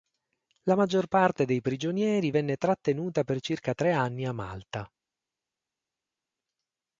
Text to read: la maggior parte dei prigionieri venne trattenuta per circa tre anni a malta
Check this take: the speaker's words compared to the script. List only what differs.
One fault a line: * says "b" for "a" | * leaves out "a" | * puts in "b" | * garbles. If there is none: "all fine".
all fine